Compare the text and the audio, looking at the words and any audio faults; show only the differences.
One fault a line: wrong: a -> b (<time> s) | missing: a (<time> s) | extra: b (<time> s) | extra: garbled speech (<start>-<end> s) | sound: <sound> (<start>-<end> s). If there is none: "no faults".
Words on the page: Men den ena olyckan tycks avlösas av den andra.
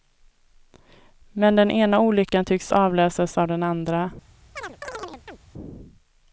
sound: chirp (4.6-5.4 s)